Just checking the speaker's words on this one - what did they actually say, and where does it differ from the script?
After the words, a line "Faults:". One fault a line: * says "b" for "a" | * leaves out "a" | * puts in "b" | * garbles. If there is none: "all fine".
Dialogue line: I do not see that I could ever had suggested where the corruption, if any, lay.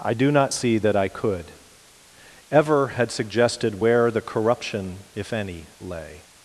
I do not see that I could ever had suggested where the corruption, if any, lay.
Faults:
all fine